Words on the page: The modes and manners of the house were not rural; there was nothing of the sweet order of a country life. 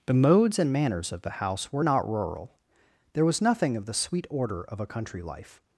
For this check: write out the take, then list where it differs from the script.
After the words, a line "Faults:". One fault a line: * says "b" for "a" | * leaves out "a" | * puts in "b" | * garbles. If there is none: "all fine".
The modes and manners of the house were not rural; there was nothing of the sweet order of a country life.
Faults:
all fine